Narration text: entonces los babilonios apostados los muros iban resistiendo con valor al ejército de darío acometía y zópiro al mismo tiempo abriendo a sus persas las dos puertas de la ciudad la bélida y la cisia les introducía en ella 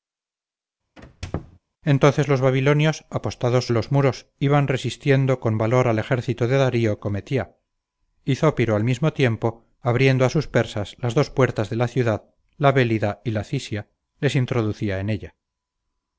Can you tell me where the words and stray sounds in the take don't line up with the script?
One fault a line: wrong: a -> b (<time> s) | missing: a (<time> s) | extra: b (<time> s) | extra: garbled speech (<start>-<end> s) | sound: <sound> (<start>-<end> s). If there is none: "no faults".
sound: squeak (1.0-1.6 s)